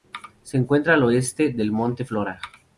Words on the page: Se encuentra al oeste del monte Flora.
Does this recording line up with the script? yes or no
yes